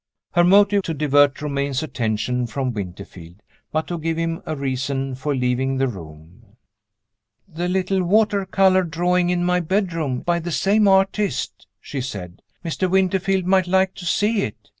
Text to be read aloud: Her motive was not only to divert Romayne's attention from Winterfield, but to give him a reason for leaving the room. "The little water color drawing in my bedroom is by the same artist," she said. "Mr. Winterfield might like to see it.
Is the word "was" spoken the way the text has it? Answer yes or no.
no